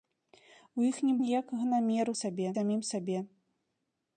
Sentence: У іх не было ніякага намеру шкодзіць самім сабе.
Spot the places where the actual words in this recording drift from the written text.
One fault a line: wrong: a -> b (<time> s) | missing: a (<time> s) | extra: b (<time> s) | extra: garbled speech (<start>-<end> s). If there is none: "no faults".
missing: было (1.1 s)
wrong: шкодзіць -> сабе (2.2 s)